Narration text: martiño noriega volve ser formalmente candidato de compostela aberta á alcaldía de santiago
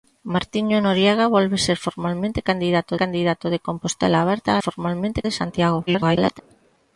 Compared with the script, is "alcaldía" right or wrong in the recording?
wrong